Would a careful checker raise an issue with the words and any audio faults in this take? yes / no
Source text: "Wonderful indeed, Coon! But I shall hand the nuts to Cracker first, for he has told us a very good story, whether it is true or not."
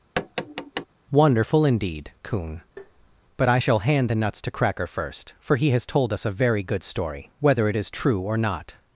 yes